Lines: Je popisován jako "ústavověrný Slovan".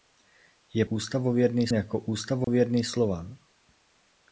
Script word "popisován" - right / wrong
wrong